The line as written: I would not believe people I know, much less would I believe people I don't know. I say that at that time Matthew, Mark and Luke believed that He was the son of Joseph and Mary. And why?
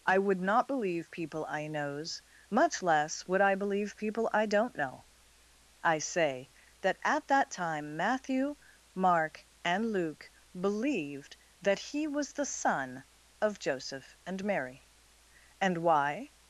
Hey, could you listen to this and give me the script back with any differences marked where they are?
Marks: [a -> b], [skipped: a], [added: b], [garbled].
I would not believe people I [know, -> knows] much less would I believe people I don't know. I say that at that time Matthew, Mark and Luke believed that He was the son of Joseph and Mary. And why?